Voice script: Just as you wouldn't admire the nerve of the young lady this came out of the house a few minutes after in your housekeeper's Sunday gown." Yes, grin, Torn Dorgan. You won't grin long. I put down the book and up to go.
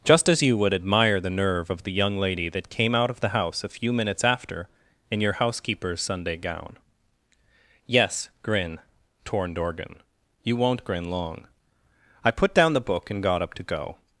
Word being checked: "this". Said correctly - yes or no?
no